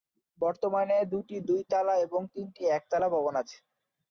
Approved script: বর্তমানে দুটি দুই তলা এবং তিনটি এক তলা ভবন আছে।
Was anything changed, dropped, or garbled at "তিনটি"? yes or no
no